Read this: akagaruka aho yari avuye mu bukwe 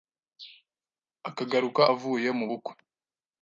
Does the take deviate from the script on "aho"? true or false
true